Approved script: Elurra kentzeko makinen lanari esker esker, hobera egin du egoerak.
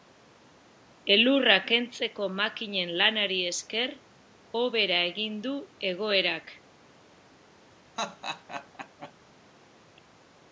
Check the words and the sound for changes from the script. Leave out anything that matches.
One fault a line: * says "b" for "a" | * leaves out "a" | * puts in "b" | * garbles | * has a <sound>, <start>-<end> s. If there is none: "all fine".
* leaves out "esker"
* has a laugh, 8.0-9.1 s